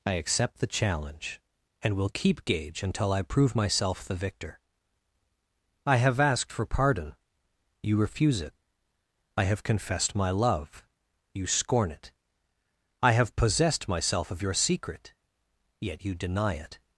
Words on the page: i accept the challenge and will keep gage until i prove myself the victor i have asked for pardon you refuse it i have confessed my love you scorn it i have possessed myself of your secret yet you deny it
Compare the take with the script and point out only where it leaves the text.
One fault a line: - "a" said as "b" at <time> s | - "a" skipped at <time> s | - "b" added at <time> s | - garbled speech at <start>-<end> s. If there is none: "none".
none